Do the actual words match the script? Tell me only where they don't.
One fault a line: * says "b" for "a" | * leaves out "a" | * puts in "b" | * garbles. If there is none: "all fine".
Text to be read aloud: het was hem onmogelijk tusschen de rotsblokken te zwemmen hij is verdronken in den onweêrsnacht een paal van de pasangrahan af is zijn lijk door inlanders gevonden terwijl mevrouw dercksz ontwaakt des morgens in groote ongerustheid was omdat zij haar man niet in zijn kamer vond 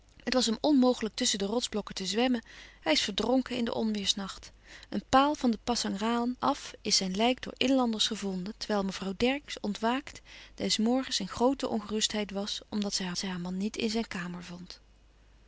* puts in "zij haar"